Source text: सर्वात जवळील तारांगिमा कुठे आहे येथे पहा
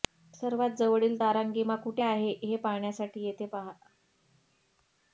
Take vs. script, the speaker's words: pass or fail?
fail